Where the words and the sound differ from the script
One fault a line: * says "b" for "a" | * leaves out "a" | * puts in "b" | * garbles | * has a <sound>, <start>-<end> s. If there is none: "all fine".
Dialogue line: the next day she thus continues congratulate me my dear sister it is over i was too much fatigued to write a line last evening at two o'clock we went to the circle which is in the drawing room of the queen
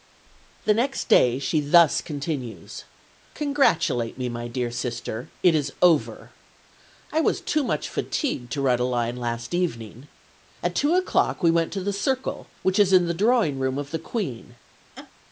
* has a laugh, 15.0-15.1 s